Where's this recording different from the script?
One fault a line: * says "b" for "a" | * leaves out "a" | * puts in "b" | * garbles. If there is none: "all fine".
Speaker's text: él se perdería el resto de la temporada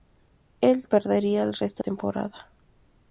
* leaves out "se"
* leaves out "de la"